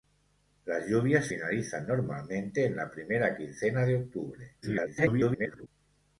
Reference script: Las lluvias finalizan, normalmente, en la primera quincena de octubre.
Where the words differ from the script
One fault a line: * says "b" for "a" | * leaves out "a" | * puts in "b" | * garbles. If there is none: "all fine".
* garbles